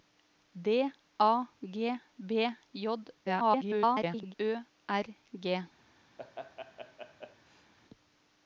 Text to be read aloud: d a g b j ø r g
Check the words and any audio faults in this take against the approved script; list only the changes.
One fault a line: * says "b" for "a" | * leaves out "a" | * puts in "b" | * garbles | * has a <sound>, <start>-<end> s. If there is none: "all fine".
* garbles
* has a laugh, 6.2-7.7 s